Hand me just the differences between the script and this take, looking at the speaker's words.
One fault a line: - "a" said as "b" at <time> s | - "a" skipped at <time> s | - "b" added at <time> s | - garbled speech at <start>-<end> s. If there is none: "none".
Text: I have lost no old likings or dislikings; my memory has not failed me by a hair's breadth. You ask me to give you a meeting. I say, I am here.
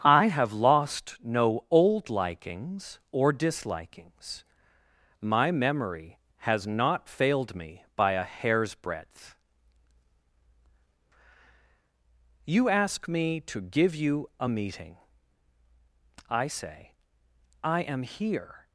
none